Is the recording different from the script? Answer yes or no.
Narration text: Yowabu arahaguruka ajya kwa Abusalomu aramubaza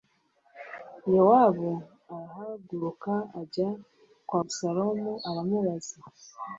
no